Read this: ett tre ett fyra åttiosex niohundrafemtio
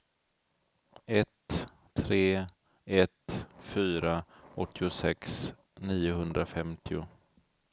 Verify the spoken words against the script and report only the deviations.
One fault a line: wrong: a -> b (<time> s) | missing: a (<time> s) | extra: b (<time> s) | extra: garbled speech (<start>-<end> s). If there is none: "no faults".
no faults